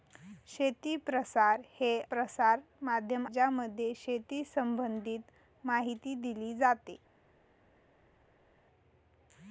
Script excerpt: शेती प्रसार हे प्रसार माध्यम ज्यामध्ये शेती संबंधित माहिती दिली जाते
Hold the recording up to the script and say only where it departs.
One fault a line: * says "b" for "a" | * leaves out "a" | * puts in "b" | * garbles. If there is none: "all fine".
all fine